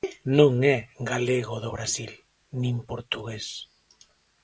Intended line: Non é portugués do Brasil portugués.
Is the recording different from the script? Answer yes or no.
yes